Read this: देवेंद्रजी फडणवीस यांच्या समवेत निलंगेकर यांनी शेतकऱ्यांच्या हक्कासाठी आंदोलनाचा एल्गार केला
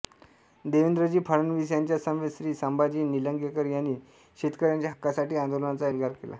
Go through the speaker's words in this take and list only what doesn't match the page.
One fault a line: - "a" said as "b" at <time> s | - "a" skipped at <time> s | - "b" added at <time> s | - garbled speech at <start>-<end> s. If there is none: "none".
- "श्री संभाजी" added at 2.4 s